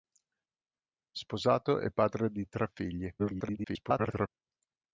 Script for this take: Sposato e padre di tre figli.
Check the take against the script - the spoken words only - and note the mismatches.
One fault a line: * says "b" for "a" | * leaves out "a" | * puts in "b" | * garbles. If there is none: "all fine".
* garbles